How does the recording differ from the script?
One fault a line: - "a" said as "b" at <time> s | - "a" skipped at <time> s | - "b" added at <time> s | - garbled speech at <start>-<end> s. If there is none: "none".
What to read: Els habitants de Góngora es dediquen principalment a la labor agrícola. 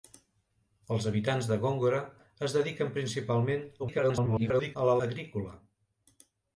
- garbled speech at 3.8-4.8 s
- "labor" skipped at 4.9 s